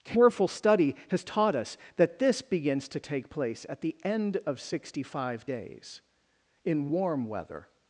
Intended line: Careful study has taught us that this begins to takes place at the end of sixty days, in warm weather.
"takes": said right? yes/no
no